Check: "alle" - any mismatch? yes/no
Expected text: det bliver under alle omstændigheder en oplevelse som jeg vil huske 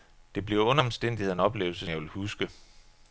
yes